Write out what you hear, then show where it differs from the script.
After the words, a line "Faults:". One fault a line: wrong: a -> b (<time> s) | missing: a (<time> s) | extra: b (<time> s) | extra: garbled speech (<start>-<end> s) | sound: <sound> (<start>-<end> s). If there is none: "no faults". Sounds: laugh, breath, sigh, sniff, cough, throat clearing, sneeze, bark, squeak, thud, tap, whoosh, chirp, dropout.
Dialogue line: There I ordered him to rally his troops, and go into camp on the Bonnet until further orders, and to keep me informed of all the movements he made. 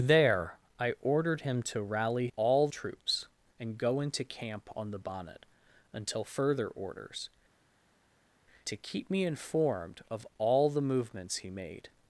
There I ordered him to rally all troops, and go into camp on the Bonnet until further orders, to keep me informed of all the movements he made.
Faults:
wrong: his -> all (2.4 s)
missing: and (7.3 s)